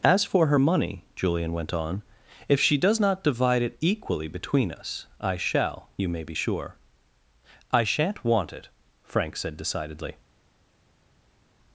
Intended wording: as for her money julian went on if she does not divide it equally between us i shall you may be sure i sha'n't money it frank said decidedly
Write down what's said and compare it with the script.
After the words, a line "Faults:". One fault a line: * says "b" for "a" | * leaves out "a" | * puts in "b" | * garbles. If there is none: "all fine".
as for her money julian went on if she does not divide it equally between us i shall you may be sure i sha'n't want it frank said decidedly
Faults:
* says "want" for "money"